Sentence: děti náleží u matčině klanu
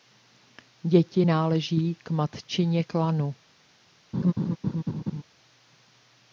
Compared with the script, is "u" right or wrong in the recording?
wrong